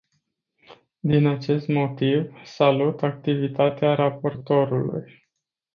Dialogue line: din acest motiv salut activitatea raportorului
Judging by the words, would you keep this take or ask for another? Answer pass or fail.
pass